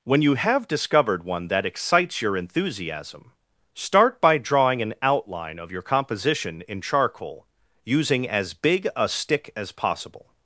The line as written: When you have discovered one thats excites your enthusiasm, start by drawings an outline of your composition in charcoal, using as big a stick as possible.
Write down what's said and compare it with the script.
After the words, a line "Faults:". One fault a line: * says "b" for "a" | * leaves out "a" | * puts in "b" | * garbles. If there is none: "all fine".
When you have discovered one that excites your enthusiasm, start by drawing an outline of your composition in charcoal, using as big a stick as possible.
Faults:
* says "that" for "thats"
* says "drawing" for "drawings"